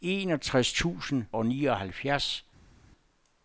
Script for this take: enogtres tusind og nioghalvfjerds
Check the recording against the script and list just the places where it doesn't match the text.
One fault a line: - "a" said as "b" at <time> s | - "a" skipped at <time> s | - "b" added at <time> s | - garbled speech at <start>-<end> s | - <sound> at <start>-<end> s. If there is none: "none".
none